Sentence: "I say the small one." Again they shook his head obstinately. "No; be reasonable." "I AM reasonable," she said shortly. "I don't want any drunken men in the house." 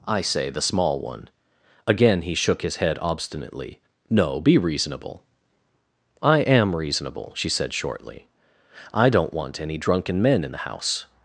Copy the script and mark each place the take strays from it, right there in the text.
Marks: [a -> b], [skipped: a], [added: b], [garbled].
"I say the small one." Again [they -> he] shook his head obstinately. "No; be reasonable." "I AM reasonable," she said shortly. "I don't want any drunken men in the house."